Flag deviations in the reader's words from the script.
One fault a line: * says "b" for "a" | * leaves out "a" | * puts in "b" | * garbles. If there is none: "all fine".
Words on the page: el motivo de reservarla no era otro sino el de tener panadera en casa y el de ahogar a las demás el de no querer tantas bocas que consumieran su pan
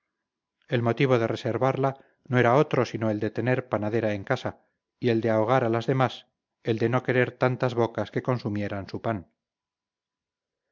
all fine